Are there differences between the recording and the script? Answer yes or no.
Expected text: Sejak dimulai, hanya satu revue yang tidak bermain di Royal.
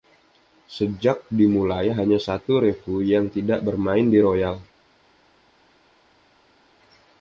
no